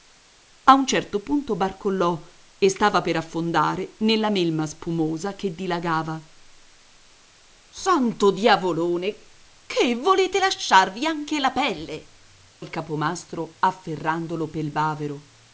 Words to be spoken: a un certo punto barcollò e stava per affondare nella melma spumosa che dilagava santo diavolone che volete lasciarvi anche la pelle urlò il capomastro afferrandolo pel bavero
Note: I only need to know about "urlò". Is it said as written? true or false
false